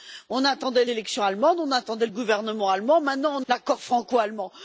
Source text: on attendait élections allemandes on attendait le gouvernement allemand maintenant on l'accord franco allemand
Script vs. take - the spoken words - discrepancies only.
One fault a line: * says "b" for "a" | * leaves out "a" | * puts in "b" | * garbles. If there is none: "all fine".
all fine